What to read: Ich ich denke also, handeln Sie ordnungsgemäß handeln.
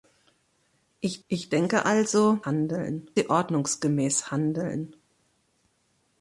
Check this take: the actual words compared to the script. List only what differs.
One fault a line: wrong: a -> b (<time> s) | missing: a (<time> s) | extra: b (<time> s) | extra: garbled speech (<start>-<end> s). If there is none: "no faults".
no faults